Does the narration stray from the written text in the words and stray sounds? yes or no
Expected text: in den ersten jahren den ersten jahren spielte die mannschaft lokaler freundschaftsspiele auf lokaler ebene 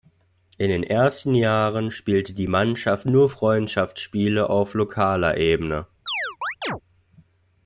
yes